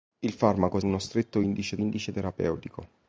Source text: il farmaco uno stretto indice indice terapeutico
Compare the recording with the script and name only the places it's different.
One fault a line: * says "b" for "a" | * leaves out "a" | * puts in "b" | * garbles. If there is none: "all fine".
all fine